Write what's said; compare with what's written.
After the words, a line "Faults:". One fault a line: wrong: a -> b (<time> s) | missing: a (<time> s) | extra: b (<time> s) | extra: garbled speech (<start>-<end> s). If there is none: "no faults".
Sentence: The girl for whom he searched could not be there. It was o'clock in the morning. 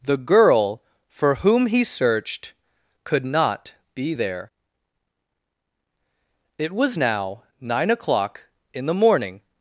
The girl for whom he searched could not be there. It was now nine o'clock in the morning.
Faults:
extra: now nine (6.9 s)